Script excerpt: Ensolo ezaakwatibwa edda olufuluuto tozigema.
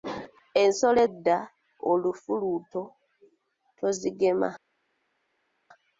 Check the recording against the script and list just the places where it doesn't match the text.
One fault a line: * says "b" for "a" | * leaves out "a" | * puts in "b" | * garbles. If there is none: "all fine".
* leaves out "ezaakwatibwa"